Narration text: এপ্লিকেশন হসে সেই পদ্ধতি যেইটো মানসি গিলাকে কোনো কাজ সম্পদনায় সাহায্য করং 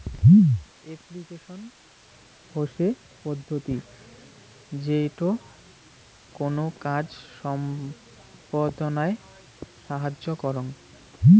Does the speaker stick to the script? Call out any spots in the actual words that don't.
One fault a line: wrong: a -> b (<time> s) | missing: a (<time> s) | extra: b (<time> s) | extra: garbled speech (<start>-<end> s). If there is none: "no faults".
missing: সেই (2.9 s)
missing: মানসি গিলাকে (5.3 s)